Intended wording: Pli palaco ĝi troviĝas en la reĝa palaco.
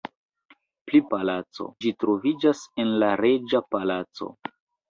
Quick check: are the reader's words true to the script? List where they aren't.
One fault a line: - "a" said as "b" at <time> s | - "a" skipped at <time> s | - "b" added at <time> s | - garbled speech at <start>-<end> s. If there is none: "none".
none